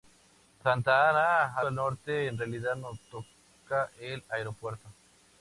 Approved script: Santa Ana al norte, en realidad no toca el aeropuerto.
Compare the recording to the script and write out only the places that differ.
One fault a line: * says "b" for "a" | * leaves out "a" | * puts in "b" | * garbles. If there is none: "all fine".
all fine